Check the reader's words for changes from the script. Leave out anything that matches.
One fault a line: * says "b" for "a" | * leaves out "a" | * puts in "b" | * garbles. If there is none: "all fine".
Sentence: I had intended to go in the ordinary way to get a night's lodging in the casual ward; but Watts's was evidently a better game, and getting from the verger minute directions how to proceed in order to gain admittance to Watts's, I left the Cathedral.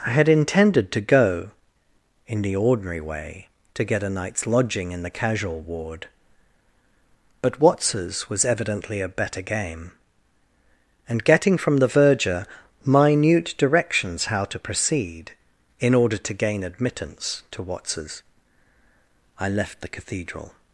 all fine